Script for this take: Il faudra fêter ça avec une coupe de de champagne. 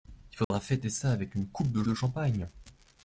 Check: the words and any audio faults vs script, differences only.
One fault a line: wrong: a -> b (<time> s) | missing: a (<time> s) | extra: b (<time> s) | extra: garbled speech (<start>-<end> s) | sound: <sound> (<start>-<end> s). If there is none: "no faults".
sound: dropout (0.4-0.5 s)